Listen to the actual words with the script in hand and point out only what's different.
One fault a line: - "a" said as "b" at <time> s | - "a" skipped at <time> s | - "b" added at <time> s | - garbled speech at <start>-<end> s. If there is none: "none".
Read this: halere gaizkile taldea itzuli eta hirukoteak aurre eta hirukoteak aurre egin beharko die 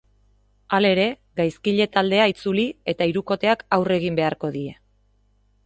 - "eta hirukoteak aurre" skipped at 4.0 s